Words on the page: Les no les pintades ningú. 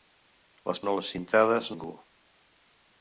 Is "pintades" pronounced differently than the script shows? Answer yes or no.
no